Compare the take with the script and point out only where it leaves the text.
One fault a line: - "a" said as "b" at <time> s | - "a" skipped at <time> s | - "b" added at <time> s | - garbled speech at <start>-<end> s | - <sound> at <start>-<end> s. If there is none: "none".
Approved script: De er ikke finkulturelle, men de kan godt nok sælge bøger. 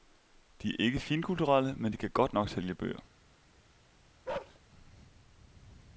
- bark at 4.3-4.6 s